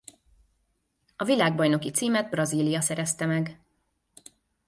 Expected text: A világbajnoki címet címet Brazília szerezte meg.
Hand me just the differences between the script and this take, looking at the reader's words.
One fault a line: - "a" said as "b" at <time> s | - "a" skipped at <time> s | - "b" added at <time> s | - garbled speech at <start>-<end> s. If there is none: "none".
- "címet" skipped at 2.3 s